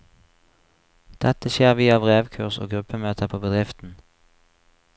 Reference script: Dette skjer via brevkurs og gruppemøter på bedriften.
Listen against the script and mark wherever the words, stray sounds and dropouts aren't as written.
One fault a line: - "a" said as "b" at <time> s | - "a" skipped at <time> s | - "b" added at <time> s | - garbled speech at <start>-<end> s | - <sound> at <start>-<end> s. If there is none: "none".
none